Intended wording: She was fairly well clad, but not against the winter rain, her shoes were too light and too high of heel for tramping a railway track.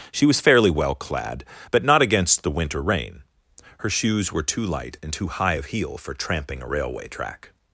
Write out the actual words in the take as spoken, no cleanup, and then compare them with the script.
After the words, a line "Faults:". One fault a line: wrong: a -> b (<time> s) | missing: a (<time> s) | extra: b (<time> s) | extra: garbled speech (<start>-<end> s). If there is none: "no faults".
She was fairly well clad, but not against the winter rain, her shoes were too light and too high of heel for tramping a railway track.
Faults:
no faults